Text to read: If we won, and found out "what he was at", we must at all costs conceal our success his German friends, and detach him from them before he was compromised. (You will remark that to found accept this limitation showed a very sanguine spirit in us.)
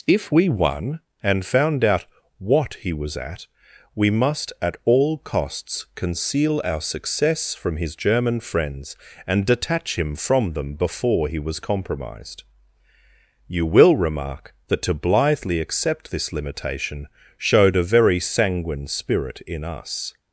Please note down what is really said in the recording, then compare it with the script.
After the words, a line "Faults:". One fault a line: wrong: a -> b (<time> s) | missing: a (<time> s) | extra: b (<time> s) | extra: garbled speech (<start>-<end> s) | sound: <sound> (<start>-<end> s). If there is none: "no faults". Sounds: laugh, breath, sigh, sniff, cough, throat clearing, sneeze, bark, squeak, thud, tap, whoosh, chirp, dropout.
If we won, and found out "what he was at", we must at all costs conceal our success from his German friends, and detach him from them before he was compromised. (You will remark that to blithely accept this limitation showed a very sanguine spirit in us.)
Faults:
extra: from (7.5 s)
wrong: found -> blithely (14.9 s)